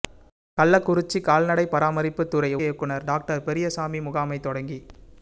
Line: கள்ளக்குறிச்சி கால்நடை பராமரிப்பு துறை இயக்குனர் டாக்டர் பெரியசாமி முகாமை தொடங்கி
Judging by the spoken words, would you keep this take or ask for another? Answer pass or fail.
pass